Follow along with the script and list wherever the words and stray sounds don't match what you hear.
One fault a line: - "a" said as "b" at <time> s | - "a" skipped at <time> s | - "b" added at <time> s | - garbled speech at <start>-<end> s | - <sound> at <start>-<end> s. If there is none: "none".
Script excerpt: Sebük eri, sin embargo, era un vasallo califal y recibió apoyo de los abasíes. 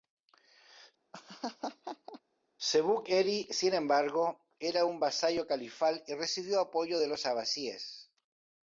- laugh at 1.1-2.2 s